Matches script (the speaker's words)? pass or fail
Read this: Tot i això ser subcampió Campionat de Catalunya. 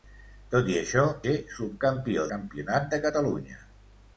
pass